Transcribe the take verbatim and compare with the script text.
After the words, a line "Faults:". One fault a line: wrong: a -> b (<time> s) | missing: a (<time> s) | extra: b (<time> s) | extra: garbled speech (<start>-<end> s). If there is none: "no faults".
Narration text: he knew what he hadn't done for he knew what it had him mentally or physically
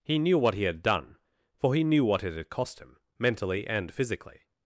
he knew what he had done for he knew what it had cost him mentally and physically
Faults:
wrong: hadn't -> had (0.6 s)
extra: cost (2.5 s)
wrong: or -> and (3.7 s)